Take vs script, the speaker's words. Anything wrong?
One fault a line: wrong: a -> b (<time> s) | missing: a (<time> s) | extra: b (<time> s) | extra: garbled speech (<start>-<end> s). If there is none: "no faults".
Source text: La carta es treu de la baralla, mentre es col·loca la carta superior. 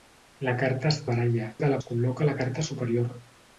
wrong: treu -> baralla (1.1 s)
missing: baralla mentre (1.8 s)